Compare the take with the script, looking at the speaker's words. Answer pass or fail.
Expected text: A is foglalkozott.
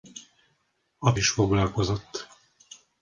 pass